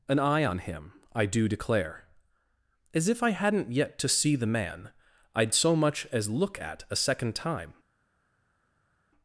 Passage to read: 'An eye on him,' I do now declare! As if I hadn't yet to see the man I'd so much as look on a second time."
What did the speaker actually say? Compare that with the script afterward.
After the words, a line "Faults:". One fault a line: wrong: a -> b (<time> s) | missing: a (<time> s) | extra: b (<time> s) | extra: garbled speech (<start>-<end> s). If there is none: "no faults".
'An eye on him,' I do declare! As if I hadn't yet to see the man I'd so much as look at a second time."
Faults:
missing: now (1.5 s)
wrong: on -> at (6.6 s)